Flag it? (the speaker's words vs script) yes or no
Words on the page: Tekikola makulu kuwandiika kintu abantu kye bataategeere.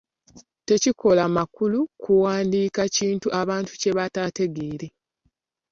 no